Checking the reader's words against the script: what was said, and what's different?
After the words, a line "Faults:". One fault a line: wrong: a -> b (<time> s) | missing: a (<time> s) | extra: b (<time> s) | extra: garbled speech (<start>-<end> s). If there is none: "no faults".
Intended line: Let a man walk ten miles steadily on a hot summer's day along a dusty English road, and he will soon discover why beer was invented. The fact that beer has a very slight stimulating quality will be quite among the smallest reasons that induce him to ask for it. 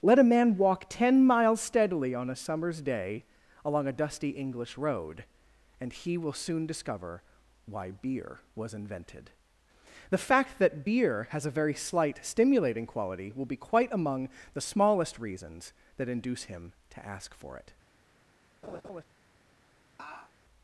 Let a man walk ten miles steadily on a summer's day along a dusty English road, and he will soon discover why beer was invented. The fact that beer has a very slight stimulating quality will be quite among the smallest reasons that induce him to ask for it.
Faults:
missing: hot (2.4 s)